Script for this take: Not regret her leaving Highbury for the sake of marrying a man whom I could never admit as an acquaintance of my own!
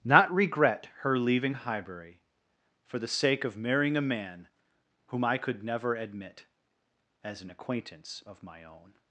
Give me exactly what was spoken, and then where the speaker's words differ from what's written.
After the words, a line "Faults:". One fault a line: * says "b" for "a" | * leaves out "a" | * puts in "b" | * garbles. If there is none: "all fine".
Not regret her leaving Highbury for the sake of marrying a man whom I could never admit as an acquaintance of my own!
Faults:
all fine